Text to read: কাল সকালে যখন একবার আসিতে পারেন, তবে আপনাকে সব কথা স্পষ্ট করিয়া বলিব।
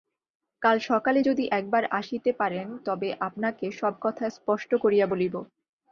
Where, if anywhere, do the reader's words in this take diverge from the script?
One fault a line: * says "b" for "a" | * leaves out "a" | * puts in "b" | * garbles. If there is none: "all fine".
* says "যদি" for "যখন"